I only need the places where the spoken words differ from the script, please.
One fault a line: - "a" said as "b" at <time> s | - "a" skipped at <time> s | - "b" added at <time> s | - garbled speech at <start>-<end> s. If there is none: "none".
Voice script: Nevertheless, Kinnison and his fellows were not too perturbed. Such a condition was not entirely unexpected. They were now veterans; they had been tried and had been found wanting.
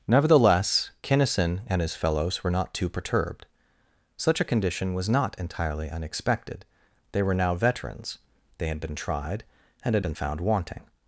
none